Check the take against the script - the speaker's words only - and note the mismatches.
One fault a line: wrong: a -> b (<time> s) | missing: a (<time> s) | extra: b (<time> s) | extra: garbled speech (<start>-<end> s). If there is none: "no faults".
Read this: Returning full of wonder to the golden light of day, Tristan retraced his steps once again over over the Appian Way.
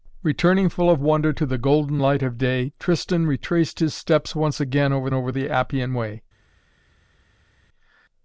no faults